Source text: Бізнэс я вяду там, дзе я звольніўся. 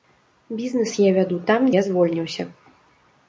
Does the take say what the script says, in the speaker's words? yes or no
no